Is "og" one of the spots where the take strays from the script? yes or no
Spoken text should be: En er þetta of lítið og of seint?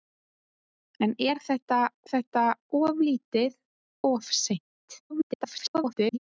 yes